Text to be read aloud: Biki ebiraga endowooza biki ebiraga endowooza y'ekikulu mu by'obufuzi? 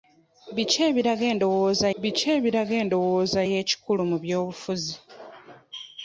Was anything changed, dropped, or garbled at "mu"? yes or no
no